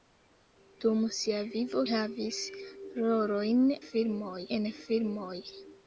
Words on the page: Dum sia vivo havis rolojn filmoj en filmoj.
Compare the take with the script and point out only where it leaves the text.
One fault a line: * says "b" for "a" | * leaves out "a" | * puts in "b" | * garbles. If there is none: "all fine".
all fine